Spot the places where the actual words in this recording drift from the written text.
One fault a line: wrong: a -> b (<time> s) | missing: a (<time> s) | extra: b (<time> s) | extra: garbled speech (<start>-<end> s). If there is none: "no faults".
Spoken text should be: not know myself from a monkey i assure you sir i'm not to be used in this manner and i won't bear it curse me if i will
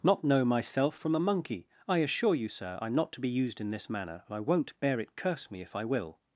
no faults